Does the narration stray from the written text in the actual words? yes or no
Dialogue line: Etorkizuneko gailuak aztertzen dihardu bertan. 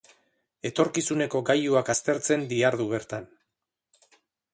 no